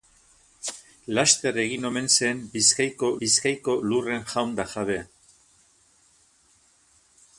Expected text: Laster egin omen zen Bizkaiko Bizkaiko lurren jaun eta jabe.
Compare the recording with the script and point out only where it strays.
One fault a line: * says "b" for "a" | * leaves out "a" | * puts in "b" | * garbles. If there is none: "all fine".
all fine